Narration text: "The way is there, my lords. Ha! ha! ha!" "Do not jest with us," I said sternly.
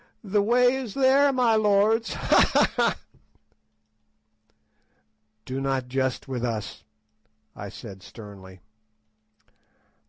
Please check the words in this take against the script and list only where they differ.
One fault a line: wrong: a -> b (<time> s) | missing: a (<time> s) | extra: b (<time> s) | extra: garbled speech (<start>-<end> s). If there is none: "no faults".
no faults